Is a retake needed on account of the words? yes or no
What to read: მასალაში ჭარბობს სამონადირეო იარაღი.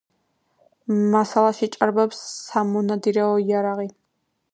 no